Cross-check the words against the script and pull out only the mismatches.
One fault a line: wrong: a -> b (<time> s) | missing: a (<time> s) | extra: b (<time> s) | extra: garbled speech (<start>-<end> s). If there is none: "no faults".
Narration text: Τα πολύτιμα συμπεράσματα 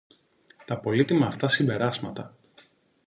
extra: αυτά (1.3 s)